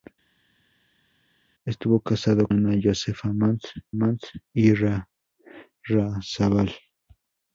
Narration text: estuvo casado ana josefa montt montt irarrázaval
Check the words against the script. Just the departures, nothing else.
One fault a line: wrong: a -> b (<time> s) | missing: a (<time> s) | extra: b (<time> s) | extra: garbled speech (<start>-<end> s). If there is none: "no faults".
no faults